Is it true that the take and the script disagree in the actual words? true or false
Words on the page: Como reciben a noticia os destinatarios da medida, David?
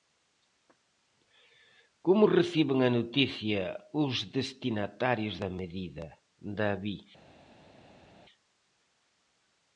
false